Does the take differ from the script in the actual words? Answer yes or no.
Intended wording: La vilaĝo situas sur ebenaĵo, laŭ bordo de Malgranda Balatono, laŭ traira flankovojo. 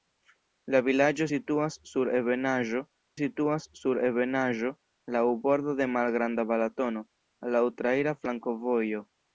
yes